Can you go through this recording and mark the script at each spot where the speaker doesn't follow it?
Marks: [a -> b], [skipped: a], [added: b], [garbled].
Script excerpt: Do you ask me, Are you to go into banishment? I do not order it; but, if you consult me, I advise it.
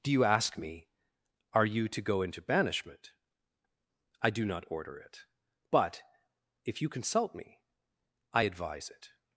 Do you ask me, Are you to go into banishment? I do not order it; but, if you consult me, I advise it.